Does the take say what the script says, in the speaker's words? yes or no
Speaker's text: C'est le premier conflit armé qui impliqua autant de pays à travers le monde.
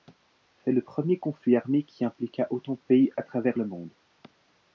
yes